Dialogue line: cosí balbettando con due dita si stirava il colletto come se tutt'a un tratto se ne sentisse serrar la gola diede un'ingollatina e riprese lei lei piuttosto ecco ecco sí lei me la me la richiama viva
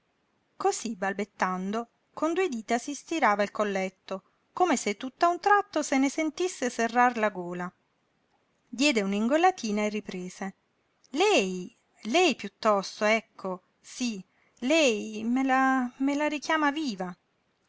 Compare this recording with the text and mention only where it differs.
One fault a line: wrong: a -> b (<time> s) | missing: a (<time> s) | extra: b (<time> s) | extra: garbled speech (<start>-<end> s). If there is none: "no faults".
missing: ecco (13.6 s)